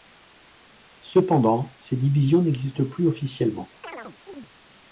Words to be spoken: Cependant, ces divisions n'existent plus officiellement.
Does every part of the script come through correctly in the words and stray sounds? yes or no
no